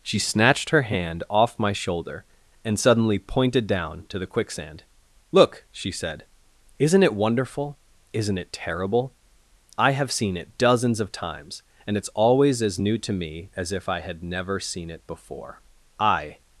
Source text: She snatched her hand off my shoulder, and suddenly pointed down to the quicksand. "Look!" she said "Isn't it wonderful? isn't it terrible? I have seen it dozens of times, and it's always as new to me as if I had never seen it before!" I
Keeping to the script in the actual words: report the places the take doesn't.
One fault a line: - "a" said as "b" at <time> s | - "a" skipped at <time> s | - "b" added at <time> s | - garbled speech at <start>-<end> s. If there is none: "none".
none